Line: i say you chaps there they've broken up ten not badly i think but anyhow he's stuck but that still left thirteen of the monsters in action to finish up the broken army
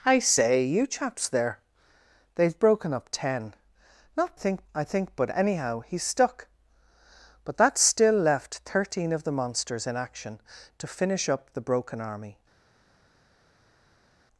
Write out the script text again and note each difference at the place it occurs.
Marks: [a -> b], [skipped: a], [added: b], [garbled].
i say you chaps there they've broken up ten not [badly -> think] i think but anyhow he's stuck but that still left thirteen of the monsters in action to finish up the broken army